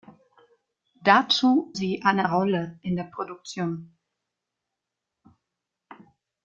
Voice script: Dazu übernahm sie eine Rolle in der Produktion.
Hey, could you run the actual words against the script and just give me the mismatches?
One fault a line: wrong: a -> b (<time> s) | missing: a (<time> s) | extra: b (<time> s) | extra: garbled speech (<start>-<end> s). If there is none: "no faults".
missing: übernahm (1.8 s)